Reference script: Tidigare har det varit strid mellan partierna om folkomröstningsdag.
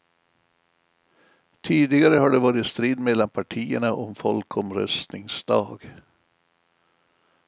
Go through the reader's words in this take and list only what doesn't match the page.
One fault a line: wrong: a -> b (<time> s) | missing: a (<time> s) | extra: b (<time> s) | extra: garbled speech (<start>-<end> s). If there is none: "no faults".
no faults